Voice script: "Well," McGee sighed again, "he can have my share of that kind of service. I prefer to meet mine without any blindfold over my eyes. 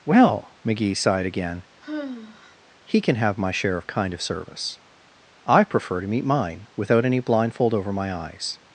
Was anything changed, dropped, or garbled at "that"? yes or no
yes